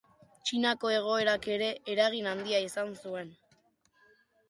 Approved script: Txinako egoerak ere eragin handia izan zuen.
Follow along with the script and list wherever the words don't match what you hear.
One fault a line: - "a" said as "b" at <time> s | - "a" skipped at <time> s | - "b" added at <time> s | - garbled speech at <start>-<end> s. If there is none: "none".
none